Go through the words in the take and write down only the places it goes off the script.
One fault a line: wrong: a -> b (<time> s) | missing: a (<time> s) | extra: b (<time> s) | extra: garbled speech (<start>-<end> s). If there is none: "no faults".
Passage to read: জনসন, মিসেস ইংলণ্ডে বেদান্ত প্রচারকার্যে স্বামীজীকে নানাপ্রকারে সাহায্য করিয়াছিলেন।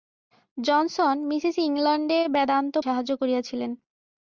missing: প্রচারকার্যে স্বামীজীকে নানাপ্রকারে (2.8 s)